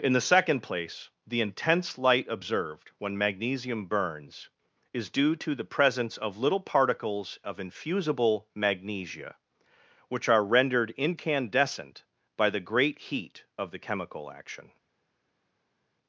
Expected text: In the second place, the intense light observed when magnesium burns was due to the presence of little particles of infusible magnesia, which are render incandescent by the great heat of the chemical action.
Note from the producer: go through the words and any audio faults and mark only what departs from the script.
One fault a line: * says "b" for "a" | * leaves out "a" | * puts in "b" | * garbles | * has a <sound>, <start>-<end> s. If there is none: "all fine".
* says "is" for "was"
* says "rendered" for "render"